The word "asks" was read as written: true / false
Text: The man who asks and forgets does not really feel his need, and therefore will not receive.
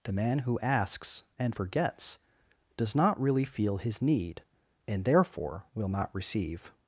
true